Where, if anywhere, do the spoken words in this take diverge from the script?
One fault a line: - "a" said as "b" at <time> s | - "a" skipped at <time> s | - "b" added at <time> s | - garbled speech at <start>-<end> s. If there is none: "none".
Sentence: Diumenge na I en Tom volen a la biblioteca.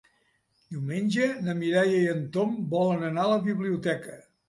- "Mireia" added at 1.6 s
- "anar" added at 3.1 s